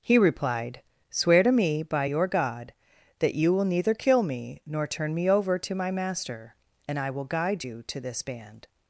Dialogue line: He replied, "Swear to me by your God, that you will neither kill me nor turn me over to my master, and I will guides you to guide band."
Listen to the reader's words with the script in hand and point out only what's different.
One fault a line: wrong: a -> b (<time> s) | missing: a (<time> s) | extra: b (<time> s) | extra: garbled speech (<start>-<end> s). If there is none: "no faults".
wrong: guides -> guide (7.2 s)
wrong: guide -> this (8.0 s)